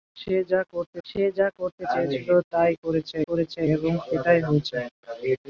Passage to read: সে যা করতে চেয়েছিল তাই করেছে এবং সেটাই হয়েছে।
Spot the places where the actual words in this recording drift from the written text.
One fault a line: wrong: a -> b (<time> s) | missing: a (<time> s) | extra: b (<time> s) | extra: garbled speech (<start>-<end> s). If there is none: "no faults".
extra: সে যা করতে (1.1 s)
extra: করেছে (3.3 s)